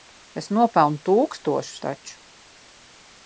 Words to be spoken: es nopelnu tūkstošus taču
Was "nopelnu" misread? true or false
false